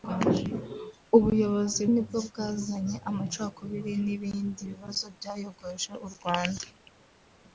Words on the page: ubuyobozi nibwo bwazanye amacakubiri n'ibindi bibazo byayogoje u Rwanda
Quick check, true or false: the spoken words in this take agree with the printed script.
true